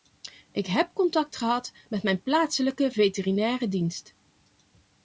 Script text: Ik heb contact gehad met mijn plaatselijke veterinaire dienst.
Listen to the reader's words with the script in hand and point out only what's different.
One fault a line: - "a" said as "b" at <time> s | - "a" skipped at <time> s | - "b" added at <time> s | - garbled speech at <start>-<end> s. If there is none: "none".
none